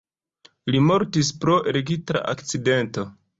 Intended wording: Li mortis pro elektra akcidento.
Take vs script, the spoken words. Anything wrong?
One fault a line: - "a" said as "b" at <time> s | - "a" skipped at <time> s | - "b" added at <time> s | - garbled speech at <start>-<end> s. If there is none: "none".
none